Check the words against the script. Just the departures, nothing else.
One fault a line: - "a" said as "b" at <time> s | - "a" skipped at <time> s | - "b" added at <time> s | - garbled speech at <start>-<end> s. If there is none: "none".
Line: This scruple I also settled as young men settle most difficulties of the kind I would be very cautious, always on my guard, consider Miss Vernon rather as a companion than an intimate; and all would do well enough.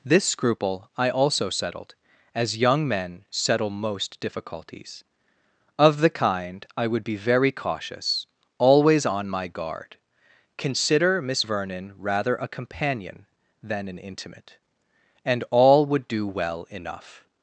- "as" skipped at 12.3 s